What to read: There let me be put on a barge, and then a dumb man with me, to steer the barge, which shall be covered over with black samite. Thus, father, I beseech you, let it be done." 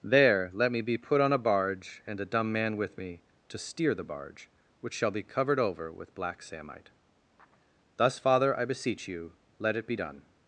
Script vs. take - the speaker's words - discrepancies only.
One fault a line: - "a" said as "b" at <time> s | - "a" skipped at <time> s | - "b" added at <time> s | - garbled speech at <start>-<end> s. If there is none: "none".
- "then" skipped at 2.2 s